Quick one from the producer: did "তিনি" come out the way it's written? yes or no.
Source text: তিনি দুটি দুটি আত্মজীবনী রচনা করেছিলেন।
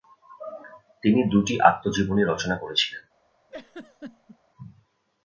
yes